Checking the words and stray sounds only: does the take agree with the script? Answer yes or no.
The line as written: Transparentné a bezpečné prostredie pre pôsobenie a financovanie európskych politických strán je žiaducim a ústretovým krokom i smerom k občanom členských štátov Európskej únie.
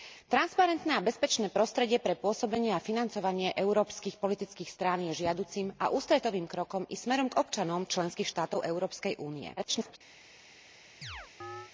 no